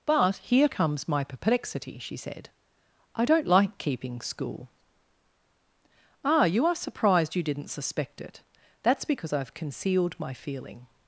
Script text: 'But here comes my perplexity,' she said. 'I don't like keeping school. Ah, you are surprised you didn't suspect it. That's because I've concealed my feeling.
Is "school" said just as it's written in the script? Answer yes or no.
yes